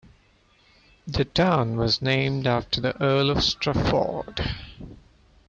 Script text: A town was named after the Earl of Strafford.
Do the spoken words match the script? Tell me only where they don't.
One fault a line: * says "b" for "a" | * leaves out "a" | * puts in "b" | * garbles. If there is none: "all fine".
* says "The" for "A"